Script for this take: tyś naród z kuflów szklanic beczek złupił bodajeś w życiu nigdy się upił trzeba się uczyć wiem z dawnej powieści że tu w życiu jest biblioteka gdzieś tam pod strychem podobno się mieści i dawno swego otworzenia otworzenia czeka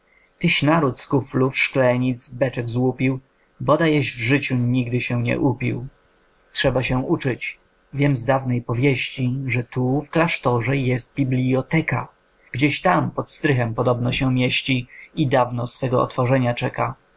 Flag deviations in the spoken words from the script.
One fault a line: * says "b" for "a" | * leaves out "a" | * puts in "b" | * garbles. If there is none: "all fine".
* puts in "nie"
* says "klasztorze" for "życiu"
* leaves out "otworzenia"